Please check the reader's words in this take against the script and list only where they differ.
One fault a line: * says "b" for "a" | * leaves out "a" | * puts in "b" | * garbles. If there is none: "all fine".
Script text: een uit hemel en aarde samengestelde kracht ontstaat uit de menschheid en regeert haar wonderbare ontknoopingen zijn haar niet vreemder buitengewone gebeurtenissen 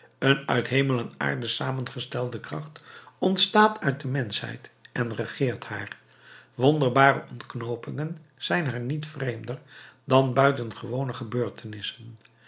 * puts in "dan"